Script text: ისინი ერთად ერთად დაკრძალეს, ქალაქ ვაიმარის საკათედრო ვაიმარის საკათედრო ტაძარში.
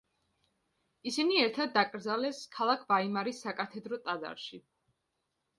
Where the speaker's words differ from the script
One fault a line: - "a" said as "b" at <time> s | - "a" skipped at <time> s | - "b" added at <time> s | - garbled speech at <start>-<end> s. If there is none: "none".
- "ერთად" skipped at 1.8 s
- "ვაიმარის საკათედრო" skipped at 4.0 s